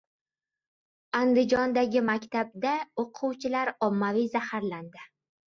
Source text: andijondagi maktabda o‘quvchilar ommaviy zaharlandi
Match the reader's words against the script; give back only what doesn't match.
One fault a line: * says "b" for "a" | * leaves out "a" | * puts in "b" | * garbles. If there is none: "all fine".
all fine